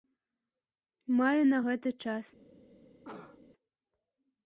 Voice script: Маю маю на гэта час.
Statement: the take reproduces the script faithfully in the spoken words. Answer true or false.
false